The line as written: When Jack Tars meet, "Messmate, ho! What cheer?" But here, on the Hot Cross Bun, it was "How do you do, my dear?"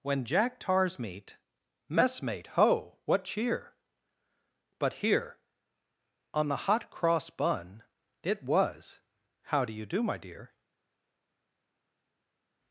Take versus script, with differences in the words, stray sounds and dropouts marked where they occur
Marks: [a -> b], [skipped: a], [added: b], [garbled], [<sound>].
When Jack Tars meet, "Messmate, ho! What cheer?" But here, on the Hot Cross Bun, it was "How do you do, my dear?"